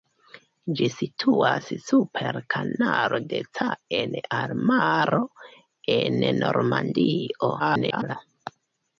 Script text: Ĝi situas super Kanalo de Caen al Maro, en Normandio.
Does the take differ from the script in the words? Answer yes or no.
yes